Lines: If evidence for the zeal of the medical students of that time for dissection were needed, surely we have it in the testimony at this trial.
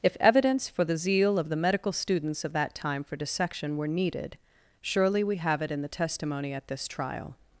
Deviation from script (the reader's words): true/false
false